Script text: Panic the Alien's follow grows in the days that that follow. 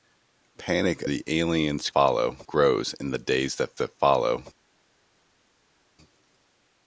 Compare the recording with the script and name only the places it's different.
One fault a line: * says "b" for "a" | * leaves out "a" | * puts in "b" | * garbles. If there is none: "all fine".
all fine